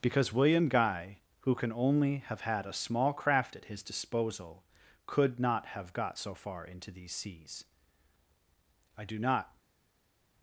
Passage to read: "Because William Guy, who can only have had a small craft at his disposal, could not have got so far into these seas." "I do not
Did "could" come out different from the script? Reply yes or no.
no